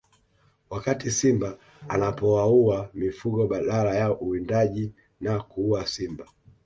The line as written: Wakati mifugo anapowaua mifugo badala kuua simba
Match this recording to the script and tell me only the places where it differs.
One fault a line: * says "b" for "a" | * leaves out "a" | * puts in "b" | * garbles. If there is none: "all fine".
* says "simba" for "mifugo"
* puts in "ya uwindaji na"